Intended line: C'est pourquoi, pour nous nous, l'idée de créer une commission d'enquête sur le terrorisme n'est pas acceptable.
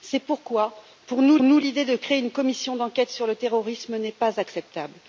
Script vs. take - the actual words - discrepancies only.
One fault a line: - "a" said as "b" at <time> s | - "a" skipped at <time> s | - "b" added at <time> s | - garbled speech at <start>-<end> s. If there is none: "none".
none